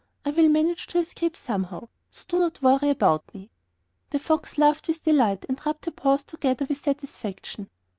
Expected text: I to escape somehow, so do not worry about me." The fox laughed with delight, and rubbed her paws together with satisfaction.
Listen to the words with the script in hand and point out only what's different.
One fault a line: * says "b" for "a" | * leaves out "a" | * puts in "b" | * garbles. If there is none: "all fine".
* puts in "will manage"